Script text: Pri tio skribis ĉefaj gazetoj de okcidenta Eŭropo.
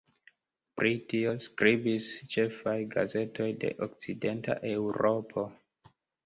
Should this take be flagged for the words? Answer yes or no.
no